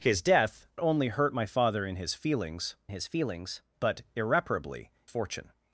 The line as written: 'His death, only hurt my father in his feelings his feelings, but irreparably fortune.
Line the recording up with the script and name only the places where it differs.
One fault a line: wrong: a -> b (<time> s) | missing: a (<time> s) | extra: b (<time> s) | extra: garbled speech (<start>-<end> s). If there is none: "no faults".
no faults